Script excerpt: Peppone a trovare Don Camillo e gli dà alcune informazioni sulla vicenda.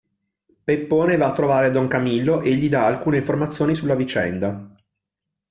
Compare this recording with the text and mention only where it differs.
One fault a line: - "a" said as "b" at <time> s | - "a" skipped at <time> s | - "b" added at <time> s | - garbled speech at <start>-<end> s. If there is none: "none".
- "va" added at 1.1 s